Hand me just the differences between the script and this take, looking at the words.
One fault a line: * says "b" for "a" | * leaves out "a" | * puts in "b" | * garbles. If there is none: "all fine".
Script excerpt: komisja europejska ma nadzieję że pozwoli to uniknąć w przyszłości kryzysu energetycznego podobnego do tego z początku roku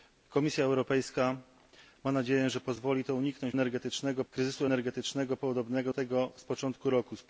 * says "energetycznego" for "przyszłości"
* leaves out "do"